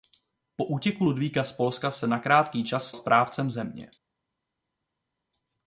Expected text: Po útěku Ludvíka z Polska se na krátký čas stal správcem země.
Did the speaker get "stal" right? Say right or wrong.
wrong